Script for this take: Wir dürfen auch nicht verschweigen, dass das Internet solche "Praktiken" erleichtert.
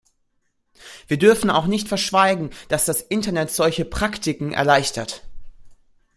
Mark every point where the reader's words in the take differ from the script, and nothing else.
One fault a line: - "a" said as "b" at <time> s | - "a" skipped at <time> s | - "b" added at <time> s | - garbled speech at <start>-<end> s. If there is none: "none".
none